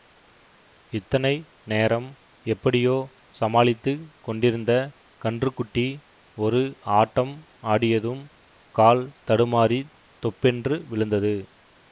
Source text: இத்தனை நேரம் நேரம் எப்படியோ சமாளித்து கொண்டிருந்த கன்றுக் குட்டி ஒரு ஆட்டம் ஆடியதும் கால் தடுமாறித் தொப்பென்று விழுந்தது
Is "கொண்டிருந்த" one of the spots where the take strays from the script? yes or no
no